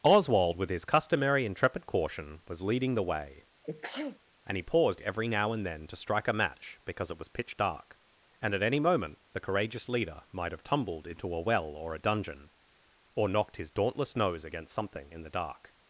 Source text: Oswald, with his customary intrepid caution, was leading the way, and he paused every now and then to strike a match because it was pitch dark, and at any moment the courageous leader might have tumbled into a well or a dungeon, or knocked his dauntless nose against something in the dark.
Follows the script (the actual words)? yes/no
yes